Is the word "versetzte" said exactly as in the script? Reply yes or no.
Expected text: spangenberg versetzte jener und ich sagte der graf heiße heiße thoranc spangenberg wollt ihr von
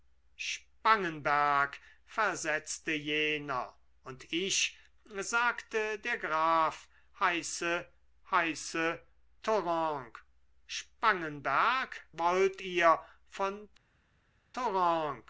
yes